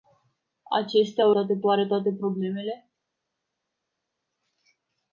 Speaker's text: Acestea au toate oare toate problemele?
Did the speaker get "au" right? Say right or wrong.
right